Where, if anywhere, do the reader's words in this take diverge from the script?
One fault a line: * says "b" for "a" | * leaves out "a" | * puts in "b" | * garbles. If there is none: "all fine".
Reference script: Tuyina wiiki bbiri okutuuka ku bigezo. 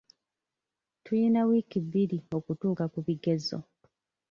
all fine